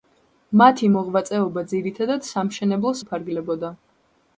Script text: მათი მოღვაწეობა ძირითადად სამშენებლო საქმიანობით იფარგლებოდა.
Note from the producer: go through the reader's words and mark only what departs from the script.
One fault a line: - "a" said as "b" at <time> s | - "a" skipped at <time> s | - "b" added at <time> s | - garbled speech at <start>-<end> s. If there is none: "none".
- "საქმიანობით" skipped at 3.0 s